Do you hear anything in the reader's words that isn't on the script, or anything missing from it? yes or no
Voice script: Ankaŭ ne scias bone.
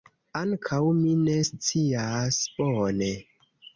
yes